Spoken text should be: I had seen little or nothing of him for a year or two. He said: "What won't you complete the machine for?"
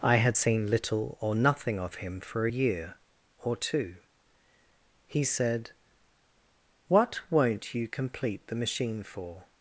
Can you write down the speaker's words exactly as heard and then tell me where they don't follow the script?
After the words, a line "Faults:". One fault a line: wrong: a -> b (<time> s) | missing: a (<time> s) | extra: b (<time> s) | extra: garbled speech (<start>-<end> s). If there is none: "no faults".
I had seen little or nothing of him for a year or two. He said: "What won't you complete the machine for?"
Faults:
no faults